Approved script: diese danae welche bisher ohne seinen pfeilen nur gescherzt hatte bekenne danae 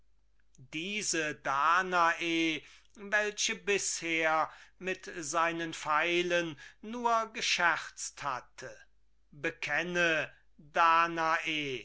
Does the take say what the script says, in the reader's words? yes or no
no